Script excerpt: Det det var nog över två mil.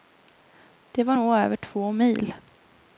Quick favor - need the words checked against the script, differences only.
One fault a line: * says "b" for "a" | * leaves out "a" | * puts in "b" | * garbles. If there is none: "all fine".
* leaves out "det"